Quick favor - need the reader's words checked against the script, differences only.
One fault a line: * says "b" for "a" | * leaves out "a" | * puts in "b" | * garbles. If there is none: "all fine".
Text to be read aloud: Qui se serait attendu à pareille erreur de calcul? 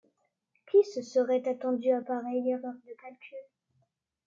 all fine